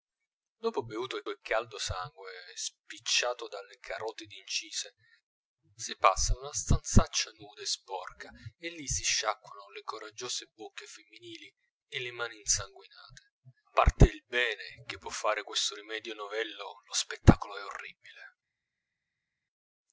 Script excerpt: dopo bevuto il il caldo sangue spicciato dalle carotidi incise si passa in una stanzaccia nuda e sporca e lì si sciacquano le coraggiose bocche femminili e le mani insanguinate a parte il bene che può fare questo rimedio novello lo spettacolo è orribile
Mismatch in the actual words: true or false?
false